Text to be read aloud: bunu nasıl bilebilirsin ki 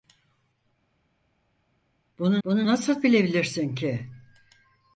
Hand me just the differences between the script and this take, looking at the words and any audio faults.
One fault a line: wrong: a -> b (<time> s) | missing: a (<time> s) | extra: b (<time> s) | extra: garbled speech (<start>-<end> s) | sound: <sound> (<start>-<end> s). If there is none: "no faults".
extra: bunu (2.4 s)